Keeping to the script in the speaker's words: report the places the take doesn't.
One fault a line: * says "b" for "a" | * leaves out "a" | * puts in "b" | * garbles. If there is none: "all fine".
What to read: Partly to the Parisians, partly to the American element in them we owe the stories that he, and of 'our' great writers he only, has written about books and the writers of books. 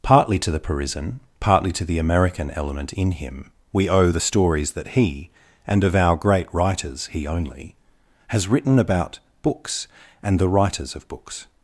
* says "Parisian" for "Parisians"
* says "him" for "them"